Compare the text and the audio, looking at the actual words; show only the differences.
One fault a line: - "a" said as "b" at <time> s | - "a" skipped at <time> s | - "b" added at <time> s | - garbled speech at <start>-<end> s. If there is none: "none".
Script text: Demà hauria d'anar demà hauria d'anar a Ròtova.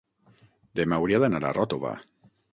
- "demà hauria d'anar" skipped at 1.4 s